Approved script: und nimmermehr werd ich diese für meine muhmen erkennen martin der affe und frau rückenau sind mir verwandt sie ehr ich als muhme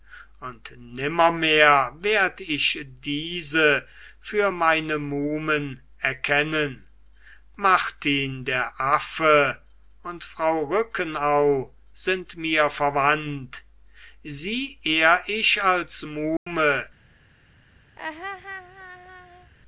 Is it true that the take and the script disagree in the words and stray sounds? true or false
true